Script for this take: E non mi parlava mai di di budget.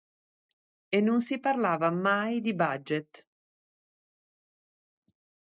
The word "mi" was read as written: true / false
false